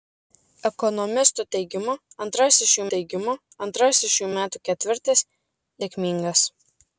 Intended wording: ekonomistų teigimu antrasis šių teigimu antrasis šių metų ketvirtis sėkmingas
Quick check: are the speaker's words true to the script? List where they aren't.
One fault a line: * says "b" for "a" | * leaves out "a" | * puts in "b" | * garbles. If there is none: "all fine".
all fine